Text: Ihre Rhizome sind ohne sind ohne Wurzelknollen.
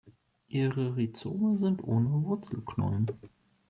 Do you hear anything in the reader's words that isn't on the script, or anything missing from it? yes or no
yes